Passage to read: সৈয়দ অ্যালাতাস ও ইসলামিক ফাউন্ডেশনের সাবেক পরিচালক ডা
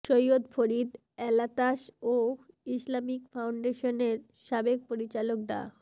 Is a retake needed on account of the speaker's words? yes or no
yes